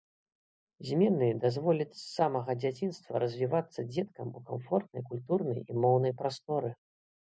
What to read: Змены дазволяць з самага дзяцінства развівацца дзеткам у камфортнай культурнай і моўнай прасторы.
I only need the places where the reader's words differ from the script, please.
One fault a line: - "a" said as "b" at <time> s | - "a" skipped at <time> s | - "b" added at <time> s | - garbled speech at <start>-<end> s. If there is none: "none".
none